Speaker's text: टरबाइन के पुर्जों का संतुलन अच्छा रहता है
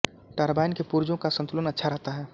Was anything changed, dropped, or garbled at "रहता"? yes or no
no